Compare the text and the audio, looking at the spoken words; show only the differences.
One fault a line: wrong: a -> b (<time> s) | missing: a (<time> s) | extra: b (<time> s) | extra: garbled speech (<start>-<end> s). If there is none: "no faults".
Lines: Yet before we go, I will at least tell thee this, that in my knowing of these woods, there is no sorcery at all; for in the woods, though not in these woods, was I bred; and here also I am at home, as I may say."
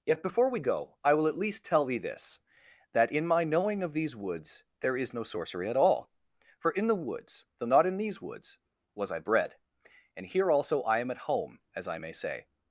no faults